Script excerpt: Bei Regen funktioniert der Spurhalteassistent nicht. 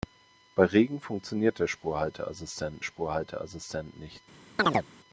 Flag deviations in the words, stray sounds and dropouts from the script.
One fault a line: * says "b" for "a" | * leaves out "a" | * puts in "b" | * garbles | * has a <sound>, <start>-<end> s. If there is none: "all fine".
* puts in "Spurhalteassistent"
* has a chirp, 4.6-4.9 s